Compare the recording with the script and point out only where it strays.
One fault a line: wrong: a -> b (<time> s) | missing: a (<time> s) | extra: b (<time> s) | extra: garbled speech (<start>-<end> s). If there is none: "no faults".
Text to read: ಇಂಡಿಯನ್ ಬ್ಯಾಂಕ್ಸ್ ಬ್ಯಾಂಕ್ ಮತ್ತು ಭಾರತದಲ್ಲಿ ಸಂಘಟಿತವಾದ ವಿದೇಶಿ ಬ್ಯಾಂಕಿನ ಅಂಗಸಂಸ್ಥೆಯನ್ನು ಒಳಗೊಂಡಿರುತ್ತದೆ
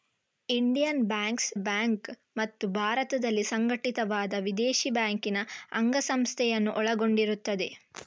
no faults